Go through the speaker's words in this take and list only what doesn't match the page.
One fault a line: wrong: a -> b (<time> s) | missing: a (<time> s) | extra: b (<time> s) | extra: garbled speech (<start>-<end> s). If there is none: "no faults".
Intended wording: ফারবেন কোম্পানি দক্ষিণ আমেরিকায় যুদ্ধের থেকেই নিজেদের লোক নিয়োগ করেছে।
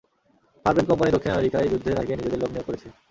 no faults